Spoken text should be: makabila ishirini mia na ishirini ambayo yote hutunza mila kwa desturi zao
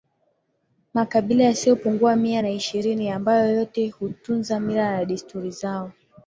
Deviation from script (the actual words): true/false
true